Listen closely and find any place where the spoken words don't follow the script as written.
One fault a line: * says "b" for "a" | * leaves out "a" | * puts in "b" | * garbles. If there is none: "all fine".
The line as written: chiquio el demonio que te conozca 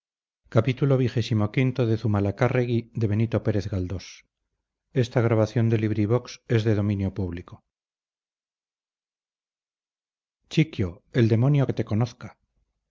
all fine